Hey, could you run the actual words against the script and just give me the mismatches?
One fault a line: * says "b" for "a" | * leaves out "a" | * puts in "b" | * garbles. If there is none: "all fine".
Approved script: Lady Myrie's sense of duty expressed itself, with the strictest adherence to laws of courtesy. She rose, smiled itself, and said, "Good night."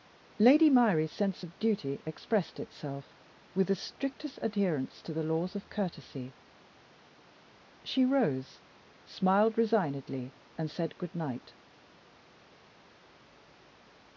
* puts in "the"
* says "resignedly" for "itself"